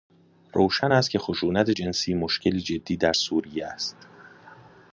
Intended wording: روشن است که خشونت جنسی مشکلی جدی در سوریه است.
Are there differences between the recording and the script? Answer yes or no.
no